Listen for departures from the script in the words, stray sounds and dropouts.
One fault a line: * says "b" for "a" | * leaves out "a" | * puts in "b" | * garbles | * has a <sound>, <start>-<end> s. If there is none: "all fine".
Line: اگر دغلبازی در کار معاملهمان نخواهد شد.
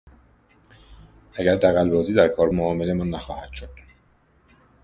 all fine